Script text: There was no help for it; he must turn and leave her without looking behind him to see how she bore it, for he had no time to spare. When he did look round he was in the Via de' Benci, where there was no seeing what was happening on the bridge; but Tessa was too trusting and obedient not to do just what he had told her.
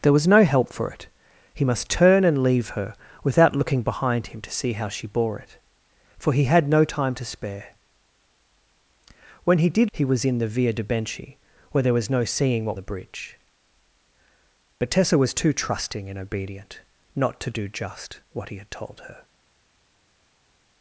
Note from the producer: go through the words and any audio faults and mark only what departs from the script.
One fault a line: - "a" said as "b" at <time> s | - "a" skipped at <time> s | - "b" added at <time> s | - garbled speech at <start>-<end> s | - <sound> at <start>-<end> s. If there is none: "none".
- "look round" skipped at 9.9 s
- "was happening on" skipped at 12.8 s